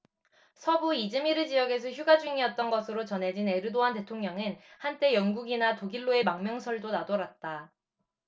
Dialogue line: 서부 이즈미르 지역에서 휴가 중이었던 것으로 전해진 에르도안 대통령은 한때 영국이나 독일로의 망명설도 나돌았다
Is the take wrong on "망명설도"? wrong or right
right